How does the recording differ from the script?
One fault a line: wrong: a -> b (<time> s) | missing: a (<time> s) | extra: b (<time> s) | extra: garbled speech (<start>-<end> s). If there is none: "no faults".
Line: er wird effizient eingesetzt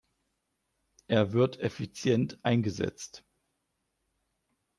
no faults